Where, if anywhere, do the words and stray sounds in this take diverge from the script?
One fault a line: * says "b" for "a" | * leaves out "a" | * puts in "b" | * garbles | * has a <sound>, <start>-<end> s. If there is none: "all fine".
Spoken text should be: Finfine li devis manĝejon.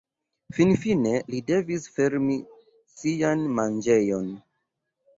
* puts in "fermi sian"